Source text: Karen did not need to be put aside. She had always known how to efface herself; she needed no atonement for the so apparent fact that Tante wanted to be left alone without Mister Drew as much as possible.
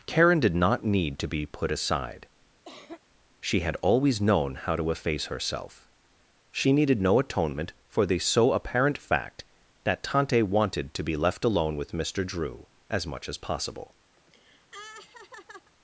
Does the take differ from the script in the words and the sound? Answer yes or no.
yes